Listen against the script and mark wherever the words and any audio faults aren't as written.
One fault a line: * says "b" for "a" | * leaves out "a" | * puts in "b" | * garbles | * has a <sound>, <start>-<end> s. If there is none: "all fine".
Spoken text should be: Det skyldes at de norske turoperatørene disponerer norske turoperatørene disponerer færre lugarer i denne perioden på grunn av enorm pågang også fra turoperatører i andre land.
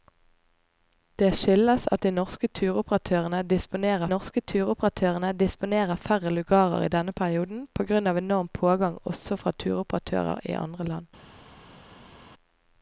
all fine